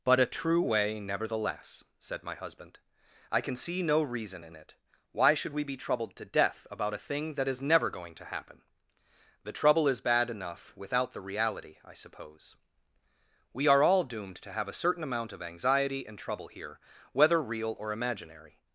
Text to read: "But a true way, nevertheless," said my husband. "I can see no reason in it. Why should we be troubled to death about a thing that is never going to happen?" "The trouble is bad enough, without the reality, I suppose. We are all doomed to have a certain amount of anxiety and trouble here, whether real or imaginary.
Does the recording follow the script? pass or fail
pass